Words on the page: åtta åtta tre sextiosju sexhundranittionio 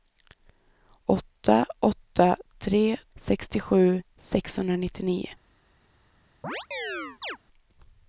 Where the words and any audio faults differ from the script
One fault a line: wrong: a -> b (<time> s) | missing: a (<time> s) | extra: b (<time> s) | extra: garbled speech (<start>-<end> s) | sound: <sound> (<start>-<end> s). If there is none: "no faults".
sound: chirp (6.4-7.4 s)